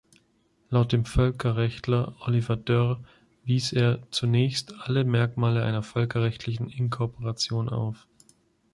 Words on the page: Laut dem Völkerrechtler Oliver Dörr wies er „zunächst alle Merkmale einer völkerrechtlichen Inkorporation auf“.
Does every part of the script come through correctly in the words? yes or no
yes